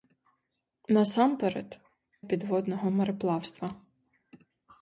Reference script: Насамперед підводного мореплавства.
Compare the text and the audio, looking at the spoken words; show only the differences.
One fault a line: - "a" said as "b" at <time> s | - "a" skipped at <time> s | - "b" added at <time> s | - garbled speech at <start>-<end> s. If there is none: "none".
none